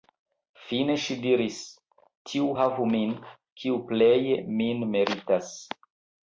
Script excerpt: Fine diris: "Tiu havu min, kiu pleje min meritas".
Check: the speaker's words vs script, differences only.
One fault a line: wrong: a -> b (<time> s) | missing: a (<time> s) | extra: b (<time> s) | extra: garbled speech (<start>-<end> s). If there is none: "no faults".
extra: ŝi (1.0 s)